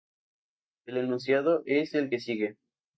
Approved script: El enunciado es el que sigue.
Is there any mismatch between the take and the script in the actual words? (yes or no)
no